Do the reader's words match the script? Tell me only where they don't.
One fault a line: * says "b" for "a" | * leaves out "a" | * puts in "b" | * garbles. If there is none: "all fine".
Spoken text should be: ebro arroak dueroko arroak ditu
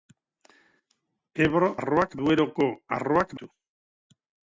all fine